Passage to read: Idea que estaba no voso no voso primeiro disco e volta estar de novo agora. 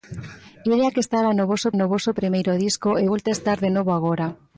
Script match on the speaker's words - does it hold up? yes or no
yes